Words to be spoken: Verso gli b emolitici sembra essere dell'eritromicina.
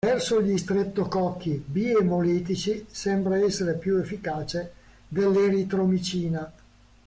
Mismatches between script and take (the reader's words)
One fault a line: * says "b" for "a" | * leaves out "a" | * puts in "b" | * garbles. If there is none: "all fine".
* puts in "streptococchi"
* puts in "più efficace"